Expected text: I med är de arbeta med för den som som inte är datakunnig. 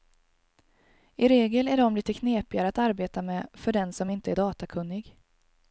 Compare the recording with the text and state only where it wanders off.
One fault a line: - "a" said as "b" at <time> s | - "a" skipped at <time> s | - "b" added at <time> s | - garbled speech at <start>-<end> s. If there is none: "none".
- "med" said as "regel" at 1.3 s
- "lite knepigare att" added at 1.9 s
- "som" skipped at 4.1 s